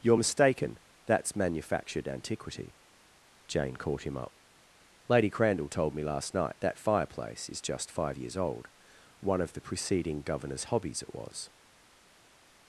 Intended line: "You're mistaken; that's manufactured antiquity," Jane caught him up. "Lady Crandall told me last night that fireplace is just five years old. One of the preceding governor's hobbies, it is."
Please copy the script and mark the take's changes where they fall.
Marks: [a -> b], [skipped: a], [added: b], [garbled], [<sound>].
"You're mistaken; that's manufactured antiquity," Jane caught him up. "Lady Crandall told me last night that fireplace is just five years old. One of the preceding governor's hobbies, it [is." -> was]